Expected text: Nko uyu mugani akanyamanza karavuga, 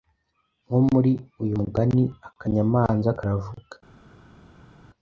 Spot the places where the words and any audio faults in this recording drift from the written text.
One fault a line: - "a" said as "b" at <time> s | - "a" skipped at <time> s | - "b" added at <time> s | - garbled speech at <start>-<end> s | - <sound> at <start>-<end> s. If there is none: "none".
- "muri" added at 0.9 s